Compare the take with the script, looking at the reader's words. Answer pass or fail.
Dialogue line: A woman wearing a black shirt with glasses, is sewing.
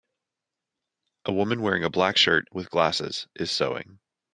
pass